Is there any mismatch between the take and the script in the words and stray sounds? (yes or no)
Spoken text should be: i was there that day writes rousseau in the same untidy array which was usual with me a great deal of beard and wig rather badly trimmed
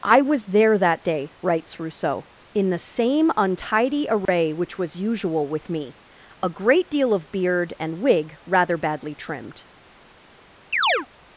yes